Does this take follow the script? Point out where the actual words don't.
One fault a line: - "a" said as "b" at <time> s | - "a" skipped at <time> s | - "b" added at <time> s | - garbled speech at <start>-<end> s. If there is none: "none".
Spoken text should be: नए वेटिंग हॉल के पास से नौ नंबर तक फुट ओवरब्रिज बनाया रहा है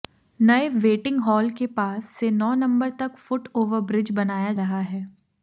none